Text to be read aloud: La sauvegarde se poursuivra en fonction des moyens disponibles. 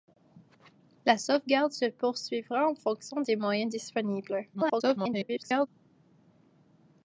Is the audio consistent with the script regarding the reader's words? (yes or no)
no